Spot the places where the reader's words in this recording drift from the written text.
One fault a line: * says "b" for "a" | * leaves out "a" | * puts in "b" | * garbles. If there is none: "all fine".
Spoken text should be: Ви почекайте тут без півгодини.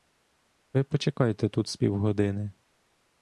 * says "з" for "без"